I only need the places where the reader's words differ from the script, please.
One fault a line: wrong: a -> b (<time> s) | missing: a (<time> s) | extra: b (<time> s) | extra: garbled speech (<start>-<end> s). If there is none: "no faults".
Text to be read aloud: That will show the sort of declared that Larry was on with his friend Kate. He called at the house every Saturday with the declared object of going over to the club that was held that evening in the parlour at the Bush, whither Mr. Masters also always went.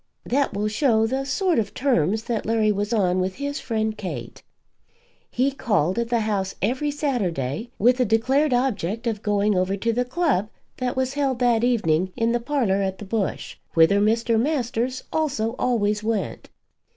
wrong: declared -> terms (1.8 s)